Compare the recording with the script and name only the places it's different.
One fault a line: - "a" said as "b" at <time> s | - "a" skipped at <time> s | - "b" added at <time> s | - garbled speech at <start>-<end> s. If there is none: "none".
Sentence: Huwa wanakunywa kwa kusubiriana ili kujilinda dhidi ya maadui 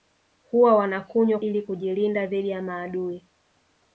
- "kwa kusubiriana" skipped at 1.4 s